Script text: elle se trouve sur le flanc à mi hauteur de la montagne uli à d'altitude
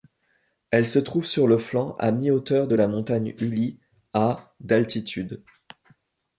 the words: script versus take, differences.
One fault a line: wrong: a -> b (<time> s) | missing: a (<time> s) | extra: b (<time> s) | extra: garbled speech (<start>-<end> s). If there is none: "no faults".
no faults